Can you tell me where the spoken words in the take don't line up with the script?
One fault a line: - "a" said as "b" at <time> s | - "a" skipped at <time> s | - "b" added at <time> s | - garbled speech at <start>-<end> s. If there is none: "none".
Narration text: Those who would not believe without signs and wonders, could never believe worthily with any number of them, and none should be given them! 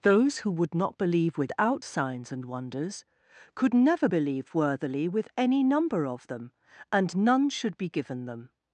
none